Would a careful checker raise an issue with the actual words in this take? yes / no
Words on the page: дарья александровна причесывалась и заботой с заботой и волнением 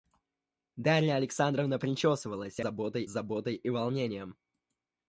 no